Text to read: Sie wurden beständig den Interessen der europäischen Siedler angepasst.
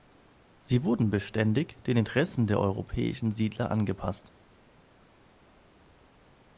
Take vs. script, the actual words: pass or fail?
pass